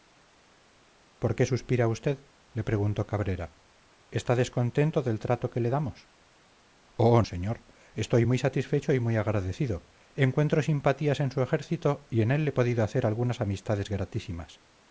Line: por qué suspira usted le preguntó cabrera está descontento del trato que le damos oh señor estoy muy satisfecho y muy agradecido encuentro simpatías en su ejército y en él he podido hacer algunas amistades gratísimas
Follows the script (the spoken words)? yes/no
yes